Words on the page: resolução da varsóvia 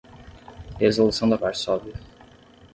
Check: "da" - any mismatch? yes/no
no